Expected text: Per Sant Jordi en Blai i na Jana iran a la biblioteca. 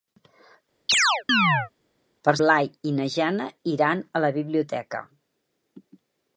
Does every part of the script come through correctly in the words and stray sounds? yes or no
no